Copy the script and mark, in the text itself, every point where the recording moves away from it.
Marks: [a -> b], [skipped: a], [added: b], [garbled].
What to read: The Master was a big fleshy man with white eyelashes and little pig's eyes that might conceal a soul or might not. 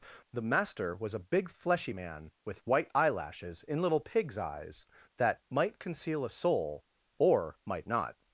The Master was a big fleshy man with white eyelashes [and -> in] little pig's eyes that might conceal a soul or might not.